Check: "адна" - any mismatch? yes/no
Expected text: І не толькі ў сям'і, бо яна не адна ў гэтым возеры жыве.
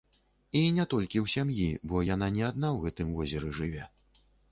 no